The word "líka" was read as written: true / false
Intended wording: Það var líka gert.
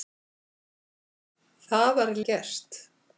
false